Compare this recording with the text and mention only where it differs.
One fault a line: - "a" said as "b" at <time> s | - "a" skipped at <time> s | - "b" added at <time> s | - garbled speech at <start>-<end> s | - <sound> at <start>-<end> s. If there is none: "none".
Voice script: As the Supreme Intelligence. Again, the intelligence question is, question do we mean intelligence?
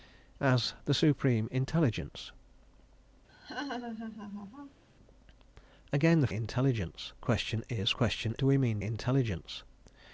- laugh at 3.3-4.8 s